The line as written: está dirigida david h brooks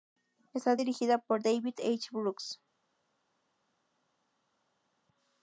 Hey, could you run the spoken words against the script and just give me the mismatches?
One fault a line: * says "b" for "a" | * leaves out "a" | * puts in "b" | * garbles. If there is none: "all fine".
* puts in "por"